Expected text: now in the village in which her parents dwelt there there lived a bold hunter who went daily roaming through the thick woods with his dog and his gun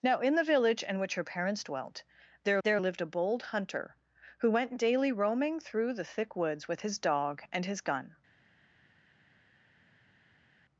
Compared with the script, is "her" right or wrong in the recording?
right